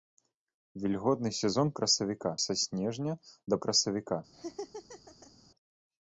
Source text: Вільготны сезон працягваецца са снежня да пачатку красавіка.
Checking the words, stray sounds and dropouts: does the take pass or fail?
fail